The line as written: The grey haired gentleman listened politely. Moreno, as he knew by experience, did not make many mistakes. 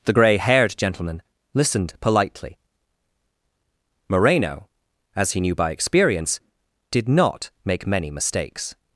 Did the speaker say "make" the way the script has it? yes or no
yes